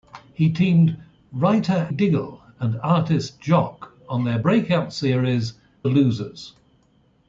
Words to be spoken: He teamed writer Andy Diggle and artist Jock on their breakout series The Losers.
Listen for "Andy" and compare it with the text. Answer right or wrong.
wrong